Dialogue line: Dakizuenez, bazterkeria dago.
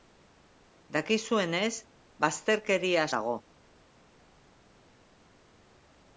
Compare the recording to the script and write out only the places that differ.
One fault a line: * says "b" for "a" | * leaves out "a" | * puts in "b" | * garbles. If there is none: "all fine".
all fine